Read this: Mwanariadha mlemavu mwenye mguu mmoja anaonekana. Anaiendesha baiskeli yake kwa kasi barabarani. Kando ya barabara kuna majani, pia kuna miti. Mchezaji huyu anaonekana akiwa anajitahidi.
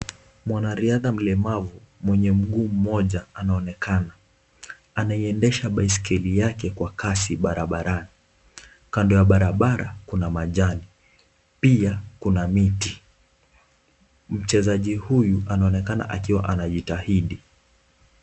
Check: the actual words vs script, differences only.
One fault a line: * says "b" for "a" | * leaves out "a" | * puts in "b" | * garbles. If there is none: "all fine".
all fine